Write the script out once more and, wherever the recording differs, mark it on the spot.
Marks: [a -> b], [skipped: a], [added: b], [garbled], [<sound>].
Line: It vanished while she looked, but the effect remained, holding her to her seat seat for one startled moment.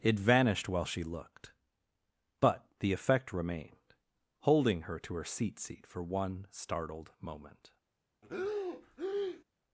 It vanished while she looked, but the effect remained, holding her to her seat seat for one startled moment. [breath]